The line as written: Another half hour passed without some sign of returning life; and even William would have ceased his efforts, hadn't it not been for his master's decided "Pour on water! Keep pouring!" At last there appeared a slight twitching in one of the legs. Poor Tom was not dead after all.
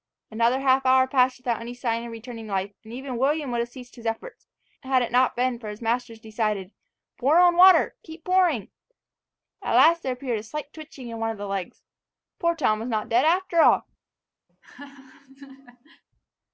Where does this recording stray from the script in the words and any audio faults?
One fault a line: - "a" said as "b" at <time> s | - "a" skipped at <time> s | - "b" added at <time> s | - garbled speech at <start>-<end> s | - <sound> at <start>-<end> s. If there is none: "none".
- "some" said as "any" at 1.6 s
- "hadn't" said as "had" at 4.8 s
- laugh at 14.5-16.0 s